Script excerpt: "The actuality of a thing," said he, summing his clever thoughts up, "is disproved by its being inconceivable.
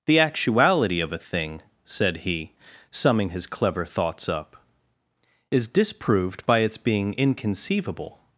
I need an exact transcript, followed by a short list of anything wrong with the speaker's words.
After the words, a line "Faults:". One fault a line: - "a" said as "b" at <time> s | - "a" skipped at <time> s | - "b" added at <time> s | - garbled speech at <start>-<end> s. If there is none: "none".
"The actuality of a thing," said he, summing his clever thoughts up, "is disproved by its being inconceivable.
Faults:
none